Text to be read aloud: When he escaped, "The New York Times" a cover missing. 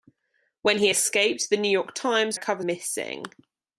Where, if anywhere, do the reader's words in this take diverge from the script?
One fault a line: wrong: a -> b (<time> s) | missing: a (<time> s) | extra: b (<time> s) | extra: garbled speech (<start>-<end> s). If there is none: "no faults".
no faults